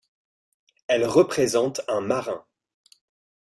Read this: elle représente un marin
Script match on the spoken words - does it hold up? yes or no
yes